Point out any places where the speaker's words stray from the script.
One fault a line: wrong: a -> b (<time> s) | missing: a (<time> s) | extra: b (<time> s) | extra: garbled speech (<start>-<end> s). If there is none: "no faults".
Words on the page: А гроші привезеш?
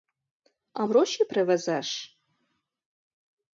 no faults